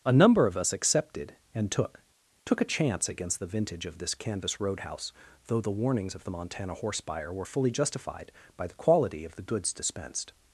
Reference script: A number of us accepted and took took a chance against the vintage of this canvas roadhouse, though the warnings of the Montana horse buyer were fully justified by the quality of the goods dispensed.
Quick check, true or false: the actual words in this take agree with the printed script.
true